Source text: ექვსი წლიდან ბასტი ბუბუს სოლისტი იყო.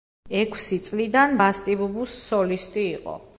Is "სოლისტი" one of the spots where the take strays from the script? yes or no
no